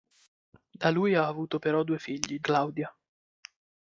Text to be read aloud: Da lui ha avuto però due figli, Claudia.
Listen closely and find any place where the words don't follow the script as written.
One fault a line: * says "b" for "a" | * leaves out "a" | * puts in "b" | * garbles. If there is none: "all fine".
all fine